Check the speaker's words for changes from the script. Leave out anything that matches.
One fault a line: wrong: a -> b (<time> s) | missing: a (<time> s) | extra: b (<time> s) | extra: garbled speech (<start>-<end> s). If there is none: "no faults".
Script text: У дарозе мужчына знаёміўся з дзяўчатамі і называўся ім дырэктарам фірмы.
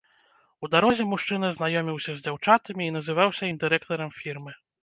no faults